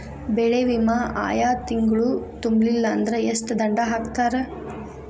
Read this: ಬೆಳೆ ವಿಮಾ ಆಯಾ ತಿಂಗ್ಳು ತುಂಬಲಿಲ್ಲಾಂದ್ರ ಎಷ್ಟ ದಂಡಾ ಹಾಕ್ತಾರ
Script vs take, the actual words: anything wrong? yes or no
no